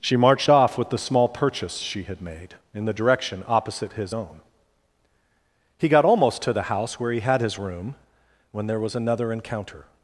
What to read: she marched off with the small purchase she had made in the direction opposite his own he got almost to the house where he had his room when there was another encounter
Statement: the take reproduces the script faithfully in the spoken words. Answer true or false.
true